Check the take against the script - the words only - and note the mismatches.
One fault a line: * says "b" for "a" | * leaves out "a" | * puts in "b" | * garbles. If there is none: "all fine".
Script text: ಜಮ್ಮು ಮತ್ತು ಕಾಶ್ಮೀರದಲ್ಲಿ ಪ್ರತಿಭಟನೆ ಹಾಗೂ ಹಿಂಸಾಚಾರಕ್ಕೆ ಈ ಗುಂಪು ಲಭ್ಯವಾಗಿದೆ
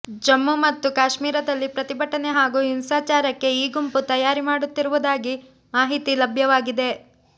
* puts in "ತಯಾರಿ ಮಾಡುತ್ತಿರುವುದಾಗಿ ಮಾಹಿತಿ"